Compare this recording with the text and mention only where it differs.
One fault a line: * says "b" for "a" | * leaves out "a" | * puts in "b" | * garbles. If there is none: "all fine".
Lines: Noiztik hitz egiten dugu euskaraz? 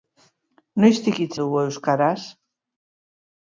* leaves out "egiten"